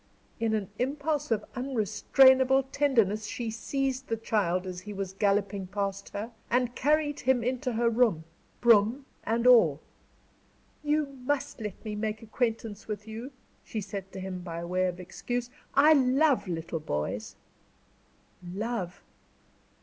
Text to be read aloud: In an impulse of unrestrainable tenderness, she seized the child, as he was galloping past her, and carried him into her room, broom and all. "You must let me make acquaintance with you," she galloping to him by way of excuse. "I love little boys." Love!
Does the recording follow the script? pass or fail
fail